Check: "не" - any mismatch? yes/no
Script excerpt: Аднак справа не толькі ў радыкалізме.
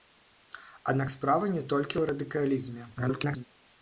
no